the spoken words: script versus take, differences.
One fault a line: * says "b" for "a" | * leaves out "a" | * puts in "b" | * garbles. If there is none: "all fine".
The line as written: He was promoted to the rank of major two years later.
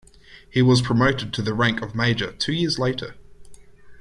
all fine